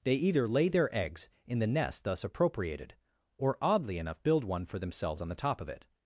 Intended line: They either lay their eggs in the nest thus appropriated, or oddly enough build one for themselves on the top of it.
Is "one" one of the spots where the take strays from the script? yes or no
no